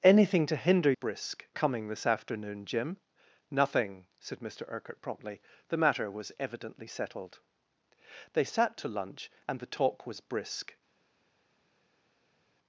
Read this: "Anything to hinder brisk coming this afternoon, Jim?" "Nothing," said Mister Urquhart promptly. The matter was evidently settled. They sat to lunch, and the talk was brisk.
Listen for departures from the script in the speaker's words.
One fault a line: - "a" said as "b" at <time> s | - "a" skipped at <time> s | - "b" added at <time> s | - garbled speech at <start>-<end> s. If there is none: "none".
none